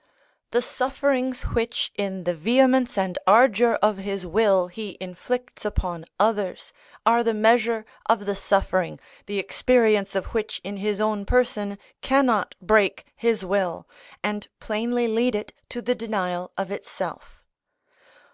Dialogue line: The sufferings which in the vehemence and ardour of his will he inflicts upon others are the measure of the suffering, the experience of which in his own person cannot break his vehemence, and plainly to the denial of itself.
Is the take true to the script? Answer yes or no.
no